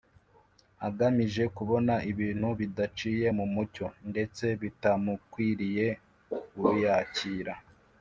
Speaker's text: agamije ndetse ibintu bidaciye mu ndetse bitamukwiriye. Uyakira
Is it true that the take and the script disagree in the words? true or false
true